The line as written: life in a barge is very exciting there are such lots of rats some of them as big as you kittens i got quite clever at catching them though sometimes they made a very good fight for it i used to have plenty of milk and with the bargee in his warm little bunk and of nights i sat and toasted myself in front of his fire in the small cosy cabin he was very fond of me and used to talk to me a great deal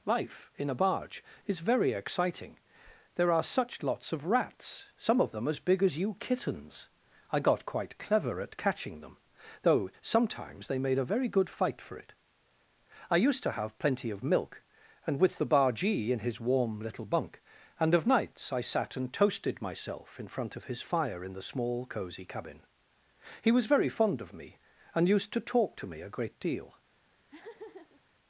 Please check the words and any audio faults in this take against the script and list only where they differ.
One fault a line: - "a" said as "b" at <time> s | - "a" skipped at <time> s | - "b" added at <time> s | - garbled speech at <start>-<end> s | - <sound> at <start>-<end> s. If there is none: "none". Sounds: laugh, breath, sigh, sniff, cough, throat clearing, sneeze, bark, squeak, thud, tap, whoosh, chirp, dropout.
- laugh at 27.3-28.0 s